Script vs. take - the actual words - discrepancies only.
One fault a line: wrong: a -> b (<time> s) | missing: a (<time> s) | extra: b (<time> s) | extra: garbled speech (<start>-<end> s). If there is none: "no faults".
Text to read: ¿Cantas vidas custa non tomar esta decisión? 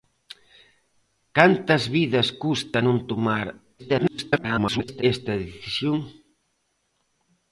extra: garbled speech (3.8-5.0 s)